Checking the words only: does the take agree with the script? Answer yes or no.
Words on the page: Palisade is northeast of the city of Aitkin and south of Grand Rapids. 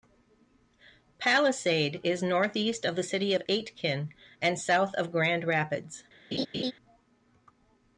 yes